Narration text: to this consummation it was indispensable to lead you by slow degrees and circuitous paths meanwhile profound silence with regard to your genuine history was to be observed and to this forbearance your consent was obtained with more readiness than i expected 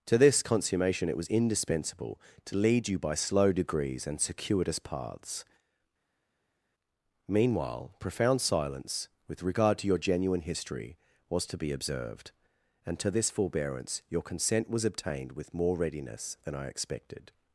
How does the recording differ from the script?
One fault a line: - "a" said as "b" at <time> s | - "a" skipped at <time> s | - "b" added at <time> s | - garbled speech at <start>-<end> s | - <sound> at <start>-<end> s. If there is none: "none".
none